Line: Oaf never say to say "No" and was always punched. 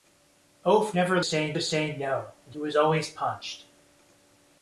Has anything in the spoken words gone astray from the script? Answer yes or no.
no